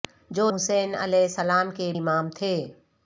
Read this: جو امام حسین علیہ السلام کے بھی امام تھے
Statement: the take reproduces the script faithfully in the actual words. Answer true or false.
false